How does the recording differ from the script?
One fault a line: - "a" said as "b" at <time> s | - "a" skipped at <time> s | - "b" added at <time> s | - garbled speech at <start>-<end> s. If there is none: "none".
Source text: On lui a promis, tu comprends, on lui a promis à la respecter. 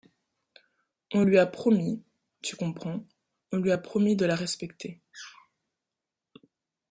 - "à" said as "de" at 4.1 s